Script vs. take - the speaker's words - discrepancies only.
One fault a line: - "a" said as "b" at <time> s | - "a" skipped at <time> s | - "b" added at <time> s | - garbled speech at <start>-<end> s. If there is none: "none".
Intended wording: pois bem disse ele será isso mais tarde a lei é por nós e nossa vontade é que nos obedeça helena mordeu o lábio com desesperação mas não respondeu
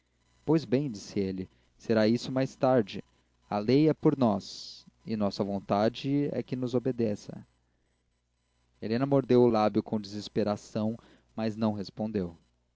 none